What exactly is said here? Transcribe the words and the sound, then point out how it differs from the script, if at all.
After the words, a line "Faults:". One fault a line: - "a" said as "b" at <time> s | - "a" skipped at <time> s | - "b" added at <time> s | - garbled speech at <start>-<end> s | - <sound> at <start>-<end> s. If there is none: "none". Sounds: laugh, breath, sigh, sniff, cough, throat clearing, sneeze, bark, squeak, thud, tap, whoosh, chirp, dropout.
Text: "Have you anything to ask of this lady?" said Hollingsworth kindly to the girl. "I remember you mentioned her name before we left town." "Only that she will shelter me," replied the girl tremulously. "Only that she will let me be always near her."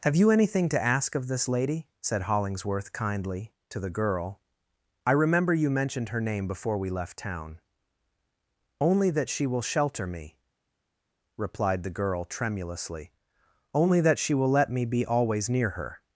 "Have you anything to ask of this lady?" said Hollingsworth kindly to the girl. "I remember you mentioned her name before we left town." "Only that she will shelter me," replied the girl tremulously. "Only that she will let me be always near her."
Faults:
none